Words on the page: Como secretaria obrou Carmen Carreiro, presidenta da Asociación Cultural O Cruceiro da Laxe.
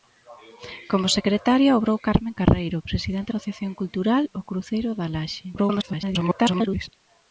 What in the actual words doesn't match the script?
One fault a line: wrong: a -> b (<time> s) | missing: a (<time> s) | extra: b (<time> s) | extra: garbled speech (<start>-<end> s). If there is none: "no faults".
missing: da (3.3 s)
extra: garbled speech (5.6-6.9 s)